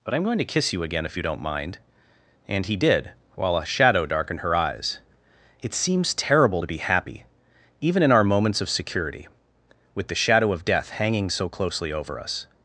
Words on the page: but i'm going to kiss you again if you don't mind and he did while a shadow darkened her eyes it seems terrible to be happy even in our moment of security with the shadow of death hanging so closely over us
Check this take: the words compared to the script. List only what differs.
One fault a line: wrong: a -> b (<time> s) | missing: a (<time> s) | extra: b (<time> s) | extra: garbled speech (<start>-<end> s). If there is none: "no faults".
wrong: moment -> moments (8.2 s)